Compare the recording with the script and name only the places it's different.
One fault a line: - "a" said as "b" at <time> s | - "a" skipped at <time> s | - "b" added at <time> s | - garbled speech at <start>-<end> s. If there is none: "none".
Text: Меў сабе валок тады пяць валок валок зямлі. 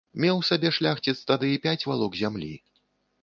- "валок" said as "шляхціц" at 0.8 s
- "валок" skipped at 2.2 s